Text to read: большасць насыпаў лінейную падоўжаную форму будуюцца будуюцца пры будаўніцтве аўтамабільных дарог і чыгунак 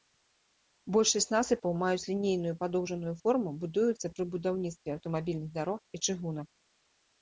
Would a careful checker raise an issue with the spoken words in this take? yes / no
yes